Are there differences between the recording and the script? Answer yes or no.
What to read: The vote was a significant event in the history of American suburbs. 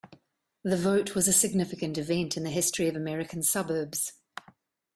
no